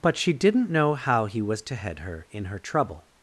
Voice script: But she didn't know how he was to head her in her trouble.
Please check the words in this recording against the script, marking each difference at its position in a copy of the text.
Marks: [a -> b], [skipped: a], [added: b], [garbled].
But she didn't know how he was to head her in her trouble.